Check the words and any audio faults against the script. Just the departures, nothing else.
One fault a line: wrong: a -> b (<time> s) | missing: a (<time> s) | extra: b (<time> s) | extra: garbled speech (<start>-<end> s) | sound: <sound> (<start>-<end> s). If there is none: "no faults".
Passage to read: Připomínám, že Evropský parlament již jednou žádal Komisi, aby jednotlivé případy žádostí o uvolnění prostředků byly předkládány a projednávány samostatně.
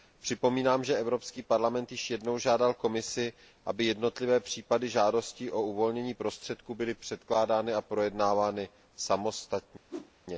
sound: whoosh (9.9-10.1 s)